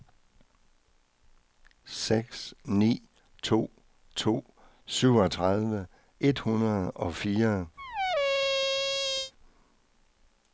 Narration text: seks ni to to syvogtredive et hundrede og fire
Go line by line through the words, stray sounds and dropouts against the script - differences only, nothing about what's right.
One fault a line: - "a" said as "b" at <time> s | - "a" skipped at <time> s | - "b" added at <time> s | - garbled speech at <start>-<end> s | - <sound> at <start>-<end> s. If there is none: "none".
- squeak at 7.8-9.3 s